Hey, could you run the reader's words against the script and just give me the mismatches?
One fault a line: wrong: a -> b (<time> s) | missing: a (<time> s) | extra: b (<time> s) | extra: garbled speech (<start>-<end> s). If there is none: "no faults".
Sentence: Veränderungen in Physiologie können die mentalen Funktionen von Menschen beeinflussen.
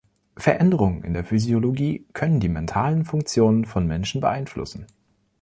extra: der (1.1 s)